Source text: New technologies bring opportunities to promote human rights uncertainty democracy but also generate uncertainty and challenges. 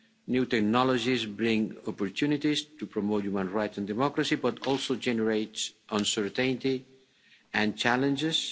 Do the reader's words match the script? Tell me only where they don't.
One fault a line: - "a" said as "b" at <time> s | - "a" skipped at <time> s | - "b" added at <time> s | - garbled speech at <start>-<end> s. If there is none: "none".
- "uncertainty" said as "and" at 3.8 s